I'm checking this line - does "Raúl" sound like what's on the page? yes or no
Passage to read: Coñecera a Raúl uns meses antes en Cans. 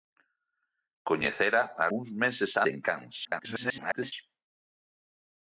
no